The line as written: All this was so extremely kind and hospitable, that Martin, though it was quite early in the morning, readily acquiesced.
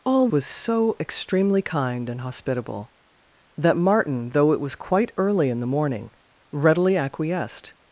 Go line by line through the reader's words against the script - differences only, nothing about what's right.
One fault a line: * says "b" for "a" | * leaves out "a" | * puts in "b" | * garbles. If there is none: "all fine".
* leaves out "this"